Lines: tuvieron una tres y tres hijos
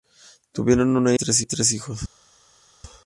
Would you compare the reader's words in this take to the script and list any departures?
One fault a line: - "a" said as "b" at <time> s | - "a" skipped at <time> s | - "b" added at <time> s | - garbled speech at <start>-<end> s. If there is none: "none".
none